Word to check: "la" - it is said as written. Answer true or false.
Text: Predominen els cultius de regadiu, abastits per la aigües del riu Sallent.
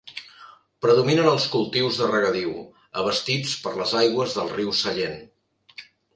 false